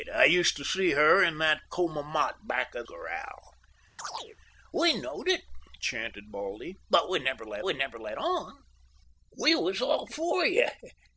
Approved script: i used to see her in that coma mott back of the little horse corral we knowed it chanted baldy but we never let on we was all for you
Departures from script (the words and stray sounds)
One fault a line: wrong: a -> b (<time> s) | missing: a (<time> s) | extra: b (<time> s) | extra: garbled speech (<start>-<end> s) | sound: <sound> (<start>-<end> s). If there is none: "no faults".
missing: the little horse (2.9 s)
sound: chirp (4.0-4.4 s)
extra: we never let (7.6 s)